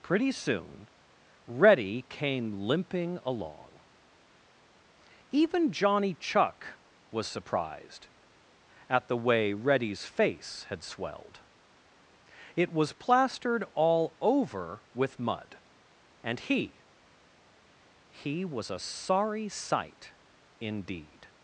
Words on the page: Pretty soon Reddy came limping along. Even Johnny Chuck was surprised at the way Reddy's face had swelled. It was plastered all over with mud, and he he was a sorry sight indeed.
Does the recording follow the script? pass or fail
pass